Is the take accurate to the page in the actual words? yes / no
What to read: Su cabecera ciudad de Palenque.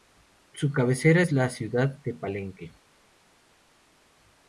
no